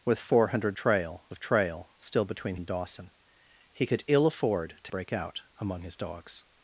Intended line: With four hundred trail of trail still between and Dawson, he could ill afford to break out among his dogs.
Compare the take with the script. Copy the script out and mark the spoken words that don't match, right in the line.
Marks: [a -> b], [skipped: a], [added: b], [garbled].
With four hundred trail of trail still between and Dawson, he could ill afford to break out among his dogs.